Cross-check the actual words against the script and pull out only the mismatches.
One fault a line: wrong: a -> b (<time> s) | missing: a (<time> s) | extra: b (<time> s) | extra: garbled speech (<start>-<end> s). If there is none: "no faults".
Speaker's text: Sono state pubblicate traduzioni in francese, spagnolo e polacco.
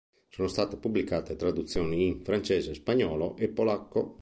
no faults